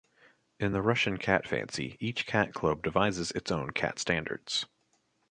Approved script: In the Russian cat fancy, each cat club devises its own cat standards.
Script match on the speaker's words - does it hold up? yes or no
yes